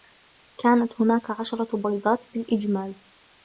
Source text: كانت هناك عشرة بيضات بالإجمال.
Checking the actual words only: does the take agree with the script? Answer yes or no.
yes